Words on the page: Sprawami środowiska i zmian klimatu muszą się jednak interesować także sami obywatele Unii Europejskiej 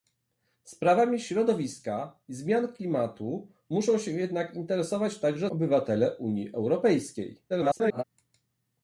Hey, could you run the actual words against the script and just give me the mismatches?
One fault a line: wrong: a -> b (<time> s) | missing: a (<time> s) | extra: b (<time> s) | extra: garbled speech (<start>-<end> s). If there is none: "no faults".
missing: sami (5.5 s)
extra: garbled speech (7.5-8.0 s)